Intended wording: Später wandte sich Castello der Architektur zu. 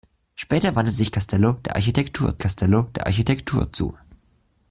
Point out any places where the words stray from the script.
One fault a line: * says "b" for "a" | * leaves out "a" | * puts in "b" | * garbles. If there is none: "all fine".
* puts in "Castello der Architektur"